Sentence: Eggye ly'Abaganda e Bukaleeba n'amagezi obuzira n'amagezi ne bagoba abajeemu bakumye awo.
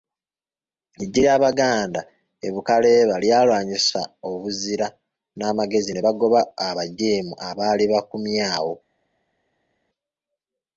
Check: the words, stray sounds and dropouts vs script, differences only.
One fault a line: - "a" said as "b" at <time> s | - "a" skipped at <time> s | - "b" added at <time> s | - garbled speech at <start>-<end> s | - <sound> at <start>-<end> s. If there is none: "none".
- "n'amagezi" said as "lyalwanyisa" at 3.2 s
- "abaali" added at 7.5 s